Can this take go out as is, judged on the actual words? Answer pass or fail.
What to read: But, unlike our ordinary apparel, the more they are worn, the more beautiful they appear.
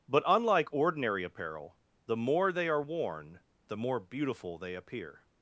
fail